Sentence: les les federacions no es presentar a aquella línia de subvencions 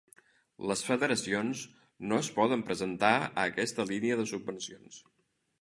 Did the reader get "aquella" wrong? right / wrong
wrong